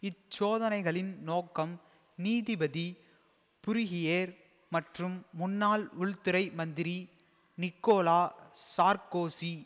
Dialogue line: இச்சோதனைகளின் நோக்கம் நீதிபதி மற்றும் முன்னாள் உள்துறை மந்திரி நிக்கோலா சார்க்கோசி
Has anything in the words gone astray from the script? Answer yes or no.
yes